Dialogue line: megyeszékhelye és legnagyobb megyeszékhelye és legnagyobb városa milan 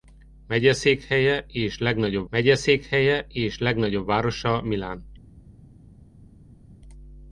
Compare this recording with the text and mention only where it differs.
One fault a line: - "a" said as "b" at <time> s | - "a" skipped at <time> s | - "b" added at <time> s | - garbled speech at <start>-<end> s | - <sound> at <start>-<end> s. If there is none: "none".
none